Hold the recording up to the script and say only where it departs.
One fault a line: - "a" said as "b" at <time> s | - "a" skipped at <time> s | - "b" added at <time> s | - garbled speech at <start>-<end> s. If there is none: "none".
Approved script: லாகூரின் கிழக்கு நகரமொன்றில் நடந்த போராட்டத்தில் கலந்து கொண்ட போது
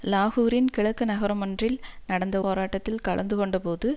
none